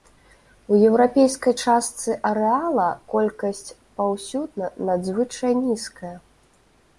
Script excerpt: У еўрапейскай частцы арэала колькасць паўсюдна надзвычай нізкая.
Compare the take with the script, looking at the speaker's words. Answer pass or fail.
pass